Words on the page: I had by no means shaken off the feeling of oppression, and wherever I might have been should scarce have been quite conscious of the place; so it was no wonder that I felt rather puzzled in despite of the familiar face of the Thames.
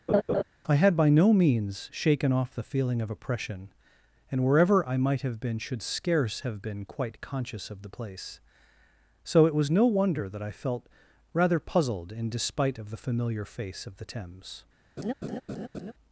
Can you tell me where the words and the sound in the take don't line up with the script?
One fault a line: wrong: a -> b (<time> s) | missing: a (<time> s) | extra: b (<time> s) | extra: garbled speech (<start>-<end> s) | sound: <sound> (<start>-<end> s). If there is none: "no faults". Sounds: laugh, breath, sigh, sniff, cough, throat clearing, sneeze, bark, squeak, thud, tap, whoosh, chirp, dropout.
sound: laugh (0.1-0.4 s)
sound: laugh (15.0-15.9 s)